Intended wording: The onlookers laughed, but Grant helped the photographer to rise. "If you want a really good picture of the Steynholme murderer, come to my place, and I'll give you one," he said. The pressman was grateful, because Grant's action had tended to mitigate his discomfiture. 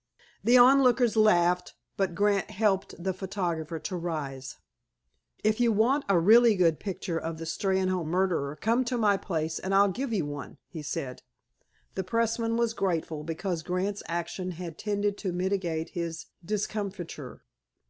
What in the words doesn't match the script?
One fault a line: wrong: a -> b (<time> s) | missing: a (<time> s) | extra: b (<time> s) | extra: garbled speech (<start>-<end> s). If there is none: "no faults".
no faults